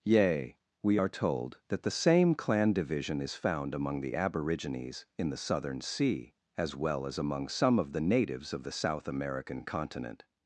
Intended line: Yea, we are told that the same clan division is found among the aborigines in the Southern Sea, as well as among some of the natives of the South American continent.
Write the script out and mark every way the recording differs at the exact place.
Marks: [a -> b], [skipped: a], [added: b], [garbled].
Yea, we are told that the same clan division is found among the aborigines in the Southern Sea, as well as among some of the natives of the South American continent.